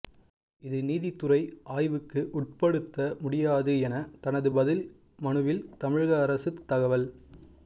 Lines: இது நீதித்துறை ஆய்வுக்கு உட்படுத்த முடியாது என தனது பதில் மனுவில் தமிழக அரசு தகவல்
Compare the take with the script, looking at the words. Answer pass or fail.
pass